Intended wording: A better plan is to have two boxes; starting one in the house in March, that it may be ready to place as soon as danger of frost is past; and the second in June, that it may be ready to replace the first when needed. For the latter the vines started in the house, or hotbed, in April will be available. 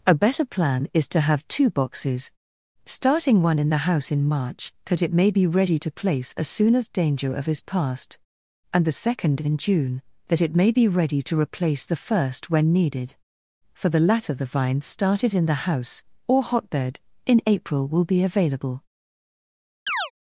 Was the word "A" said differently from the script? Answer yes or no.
no